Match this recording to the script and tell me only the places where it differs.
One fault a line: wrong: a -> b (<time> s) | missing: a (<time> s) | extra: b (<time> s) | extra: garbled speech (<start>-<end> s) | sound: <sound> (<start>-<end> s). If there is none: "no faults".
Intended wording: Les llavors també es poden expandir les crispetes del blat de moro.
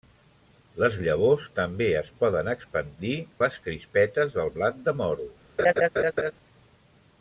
sound: laugh (5.6-6.3 s)